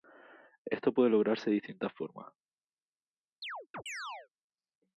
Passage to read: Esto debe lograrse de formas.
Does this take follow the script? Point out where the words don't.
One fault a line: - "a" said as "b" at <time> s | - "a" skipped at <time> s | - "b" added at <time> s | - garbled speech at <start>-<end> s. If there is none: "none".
- "debe" said as "puede" at 0.9 s
- "distintas" added at 1.5 s